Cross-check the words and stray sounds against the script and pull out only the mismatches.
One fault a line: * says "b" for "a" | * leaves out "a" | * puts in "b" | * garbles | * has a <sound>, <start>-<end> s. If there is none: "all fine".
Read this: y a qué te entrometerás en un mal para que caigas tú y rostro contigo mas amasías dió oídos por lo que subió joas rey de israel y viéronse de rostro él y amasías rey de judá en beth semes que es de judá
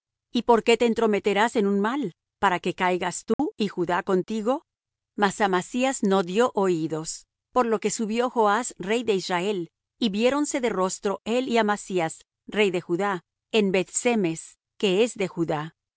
* says "por" for "a"
* has a dropout, 3.3-3.4 s
* says "judá" for "rostro"
* puts in "no"